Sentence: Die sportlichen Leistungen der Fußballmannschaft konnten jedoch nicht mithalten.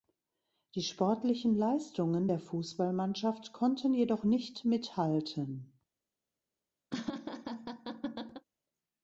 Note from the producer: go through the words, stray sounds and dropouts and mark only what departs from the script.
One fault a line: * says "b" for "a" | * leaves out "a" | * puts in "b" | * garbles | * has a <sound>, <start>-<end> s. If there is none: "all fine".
* has a laugh, 6.9-8.5 s